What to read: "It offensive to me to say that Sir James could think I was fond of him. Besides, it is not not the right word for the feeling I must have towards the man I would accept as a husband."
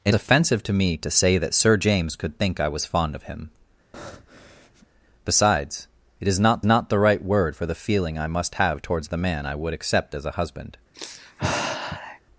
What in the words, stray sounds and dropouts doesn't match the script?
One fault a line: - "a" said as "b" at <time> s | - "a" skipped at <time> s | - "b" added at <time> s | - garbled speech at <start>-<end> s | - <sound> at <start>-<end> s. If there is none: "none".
- breath at 3.9-4.9 s
- sigh at 10.9-12.2 s